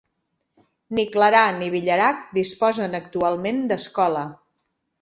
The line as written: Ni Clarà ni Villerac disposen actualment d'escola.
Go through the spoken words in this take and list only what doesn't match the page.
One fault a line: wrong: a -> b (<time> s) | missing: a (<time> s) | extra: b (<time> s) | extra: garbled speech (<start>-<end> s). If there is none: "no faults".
no faults